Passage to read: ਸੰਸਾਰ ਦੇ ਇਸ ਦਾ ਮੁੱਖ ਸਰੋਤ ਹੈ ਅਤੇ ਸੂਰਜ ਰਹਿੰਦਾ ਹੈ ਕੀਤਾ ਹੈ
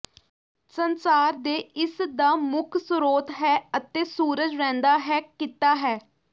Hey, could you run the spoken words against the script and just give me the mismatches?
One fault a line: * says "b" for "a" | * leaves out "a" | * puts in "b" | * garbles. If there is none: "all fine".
all fine